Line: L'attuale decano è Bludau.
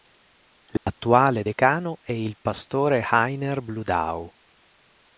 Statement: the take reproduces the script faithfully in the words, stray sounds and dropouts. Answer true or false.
false